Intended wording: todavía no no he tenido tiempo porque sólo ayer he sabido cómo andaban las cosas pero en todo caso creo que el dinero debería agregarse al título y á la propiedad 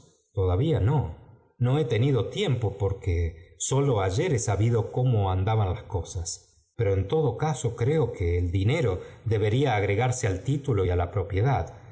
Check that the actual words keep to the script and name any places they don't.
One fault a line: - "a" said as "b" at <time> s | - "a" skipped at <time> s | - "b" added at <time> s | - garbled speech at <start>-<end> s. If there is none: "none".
none